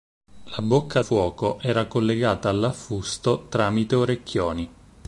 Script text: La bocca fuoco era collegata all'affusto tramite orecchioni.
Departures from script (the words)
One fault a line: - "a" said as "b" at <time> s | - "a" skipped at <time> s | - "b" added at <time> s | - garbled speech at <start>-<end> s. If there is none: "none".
none